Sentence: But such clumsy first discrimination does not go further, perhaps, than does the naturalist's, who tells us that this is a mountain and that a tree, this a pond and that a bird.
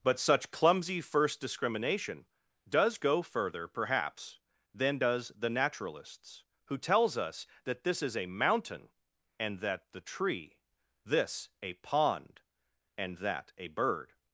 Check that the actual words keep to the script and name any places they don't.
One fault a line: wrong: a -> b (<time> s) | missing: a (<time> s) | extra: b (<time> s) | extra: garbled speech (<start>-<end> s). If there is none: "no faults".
missing: not (3.0 s)
wrong: a -> the (9.9 s)